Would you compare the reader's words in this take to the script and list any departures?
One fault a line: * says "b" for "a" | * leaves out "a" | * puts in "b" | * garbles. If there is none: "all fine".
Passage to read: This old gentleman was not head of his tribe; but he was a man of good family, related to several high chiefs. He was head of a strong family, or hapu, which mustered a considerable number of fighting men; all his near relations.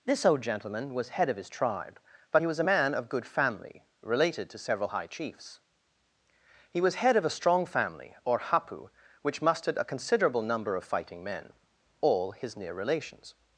* leaves out "not"